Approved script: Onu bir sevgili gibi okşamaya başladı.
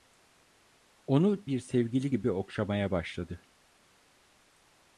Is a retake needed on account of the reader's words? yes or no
no